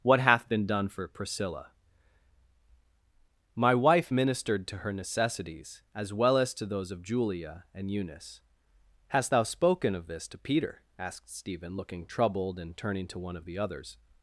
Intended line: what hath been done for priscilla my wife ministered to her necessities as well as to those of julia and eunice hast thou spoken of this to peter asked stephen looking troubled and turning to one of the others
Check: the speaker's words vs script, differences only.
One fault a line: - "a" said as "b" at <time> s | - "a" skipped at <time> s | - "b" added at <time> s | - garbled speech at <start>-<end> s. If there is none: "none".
none